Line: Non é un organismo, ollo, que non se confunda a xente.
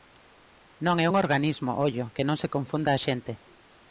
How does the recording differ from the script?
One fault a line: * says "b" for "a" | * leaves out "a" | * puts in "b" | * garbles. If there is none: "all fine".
all fine